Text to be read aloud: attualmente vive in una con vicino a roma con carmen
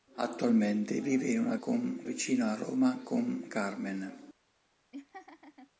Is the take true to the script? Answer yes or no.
yes